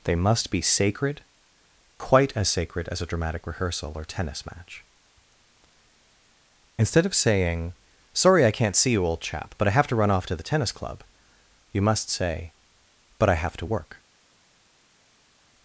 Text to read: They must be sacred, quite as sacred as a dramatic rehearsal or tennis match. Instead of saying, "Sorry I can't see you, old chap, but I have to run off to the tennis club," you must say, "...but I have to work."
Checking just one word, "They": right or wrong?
right